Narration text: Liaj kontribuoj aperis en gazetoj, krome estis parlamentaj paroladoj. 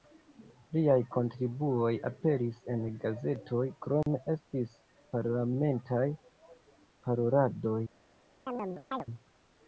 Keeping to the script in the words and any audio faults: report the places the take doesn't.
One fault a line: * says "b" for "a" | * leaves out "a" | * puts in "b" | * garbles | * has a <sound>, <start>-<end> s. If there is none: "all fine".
* has a dropout, 4.0-4.1 s
* has a chirp, 8.5-9.1 s